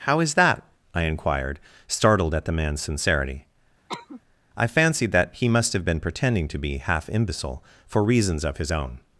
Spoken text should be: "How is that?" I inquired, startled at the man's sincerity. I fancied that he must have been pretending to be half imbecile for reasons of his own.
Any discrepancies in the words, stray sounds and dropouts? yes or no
yes